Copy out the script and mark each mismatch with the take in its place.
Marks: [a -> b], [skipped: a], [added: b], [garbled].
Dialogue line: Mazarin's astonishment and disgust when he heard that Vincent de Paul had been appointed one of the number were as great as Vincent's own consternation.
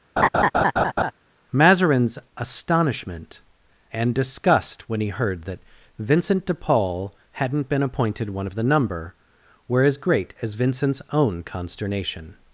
Mazarin's astonishment and disgust when he heard that Vincent de Paul [had -> hadn't] been appointed one of the number were as great as Vincent's own consternation.